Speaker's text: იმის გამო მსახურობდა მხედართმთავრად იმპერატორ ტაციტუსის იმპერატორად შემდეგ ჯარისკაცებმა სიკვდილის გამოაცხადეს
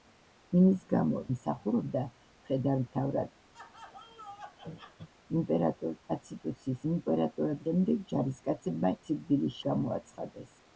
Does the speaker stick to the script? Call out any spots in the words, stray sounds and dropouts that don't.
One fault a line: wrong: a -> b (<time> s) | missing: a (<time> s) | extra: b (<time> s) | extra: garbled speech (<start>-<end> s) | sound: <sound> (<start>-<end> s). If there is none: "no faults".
sound: laugh (3.5-5.1 s)